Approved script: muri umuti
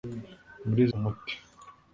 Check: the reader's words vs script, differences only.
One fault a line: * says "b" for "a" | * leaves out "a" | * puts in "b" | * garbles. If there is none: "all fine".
all fine